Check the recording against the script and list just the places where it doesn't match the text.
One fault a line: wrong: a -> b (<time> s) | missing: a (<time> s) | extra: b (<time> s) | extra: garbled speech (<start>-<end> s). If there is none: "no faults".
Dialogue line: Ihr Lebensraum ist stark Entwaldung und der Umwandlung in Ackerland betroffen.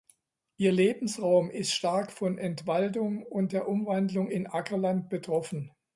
extra: von (2.1 s)